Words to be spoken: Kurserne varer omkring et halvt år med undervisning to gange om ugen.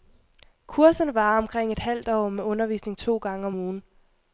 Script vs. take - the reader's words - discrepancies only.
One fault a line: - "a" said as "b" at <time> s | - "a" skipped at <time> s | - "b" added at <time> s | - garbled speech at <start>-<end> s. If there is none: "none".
none